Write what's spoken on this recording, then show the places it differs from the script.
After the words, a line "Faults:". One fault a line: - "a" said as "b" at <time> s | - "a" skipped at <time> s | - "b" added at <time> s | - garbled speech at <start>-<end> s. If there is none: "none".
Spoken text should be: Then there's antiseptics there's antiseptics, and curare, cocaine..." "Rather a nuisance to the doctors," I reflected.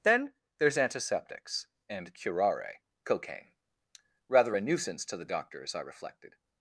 Then there's antiseptics, and curare, cocaine..." "Rather a nuisance to the doctors," I reflected.
Faults:
- "there's antiseptics" skipped at 1.7 s